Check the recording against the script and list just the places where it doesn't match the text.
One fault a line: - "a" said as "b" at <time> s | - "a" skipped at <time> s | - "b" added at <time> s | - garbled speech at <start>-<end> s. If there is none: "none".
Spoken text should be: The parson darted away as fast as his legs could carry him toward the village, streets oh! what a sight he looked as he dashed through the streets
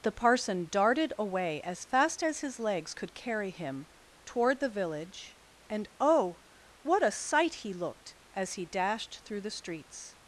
- "streets" said as "and" at 5.7 s